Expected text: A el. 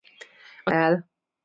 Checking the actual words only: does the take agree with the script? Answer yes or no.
yes